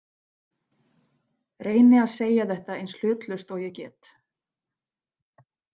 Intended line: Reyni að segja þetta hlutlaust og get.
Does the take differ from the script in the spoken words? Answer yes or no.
yes